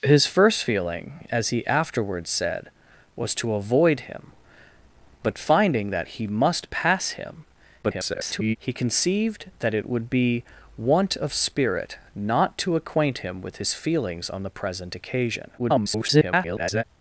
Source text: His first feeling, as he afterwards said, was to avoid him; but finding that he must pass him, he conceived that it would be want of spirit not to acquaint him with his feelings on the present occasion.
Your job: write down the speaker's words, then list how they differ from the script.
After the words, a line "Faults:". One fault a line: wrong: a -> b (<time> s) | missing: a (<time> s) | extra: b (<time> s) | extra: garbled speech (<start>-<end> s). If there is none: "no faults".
His first feeling, as he afterwards said, was to avoid him; but finding that he must pass him, [garbled] he conceived that it would be want of spirit not to acquaint him with his feelings on the present occasion. [garbled]
Faults:
extra: garbled speech (7.8-8.6 s)
extra: garbled speech (15.6-16.8 s)